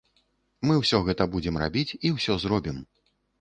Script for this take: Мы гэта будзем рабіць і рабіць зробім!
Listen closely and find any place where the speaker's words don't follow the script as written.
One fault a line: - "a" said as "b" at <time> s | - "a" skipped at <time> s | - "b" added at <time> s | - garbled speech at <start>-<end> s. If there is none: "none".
- "ўсё" added at 0.8 s
- "рабіць" said as "ўсё" at 2.2 s